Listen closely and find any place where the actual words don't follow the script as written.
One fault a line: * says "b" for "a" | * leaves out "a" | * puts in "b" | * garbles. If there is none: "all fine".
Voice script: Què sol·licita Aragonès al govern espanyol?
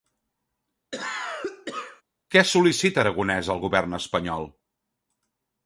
all fine